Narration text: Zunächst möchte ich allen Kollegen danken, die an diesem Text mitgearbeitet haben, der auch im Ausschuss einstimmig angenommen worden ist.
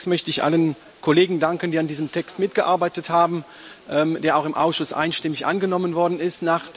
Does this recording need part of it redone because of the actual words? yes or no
no